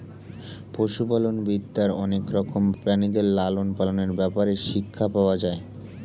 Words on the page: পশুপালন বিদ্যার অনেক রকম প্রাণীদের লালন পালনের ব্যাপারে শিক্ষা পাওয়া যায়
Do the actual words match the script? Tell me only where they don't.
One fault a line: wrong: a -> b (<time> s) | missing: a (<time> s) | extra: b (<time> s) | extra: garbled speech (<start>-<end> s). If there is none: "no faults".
no faults